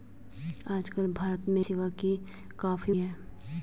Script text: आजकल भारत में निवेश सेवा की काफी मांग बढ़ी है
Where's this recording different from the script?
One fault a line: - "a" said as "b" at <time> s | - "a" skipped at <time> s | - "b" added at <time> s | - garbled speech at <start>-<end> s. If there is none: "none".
- "निवेश" skipped at 1.6 s
- "मांग बढ़ी" skipped at 2.9 s